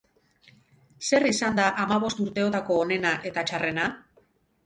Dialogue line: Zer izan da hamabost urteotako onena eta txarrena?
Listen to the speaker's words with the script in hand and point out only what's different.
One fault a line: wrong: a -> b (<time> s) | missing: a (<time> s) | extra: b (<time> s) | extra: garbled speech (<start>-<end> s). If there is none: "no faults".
no faults